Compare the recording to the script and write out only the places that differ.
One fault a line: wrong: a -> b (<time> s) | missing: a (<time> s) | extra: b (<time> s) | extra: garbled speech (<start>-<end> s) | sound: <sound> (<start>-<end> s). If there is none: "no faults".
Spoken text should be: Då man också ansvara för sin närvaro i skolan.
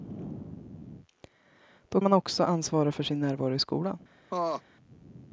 sound: laugh (4.3-4.6 s)